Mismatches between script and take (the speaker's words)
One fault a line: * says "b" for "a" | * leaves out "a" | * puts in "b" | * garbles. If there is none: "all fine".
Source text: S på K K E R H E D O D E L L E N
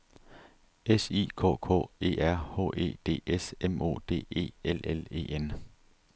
* says "I" for "på"
* puts in "S M"